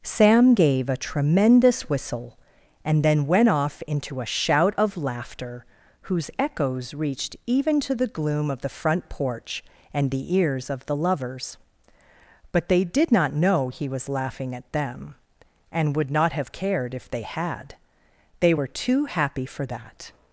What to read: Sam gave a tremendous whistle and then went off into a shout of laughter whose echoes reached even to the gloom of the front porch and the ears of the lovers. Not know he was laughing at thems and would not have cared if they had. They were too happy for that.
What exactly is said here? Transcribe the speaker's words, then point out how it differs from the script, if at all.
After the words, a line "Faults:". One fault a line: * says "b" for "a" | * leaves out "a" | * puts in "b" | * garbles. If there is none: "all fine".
Sam gave a tremendous whistle and then went off into a shout of laughter whose echoes reached even to the gloom of the front porch and the ears of the lovers. But they did not know he was laughing at them and would not have cared if they had. They were too happy for that.
Faults:
* puts in "But they did"
* says "them" for "thems"